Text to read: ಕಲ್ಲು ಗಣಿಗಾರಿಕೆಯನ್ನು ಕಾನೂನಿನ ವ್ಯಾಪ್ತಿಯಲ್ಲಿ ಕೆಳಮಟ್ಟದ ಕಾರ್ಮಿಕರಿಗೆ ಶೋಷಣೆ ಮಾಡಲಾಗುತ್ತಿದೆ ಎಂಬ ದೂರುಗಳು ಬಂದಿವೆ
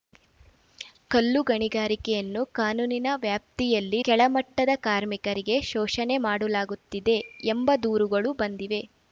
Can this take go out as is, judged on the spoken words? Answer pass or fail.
pass